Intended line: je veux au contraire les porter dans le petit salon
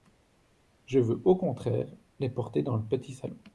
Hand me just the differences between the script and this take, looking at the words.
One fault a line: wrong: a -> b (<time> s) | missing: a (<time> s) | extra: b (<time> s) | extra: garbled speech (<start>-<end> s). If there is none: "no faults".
no faults